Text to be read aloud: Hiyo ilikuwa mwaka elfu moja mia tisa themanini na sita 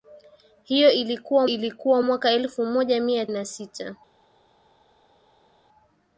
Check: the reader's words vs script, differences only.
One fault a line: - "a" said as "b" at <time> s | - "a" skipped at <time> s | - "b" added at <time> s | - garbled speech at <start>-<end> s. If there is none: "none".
- "ilikuwa" added at 1.4 s
- "tisa themanini" skipped at 3.3 s